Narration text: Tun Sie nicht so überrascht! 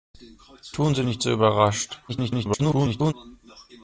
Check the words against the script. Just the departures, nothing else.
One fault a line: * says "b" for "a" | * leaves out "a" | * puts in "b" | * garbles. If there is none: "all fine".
* garbles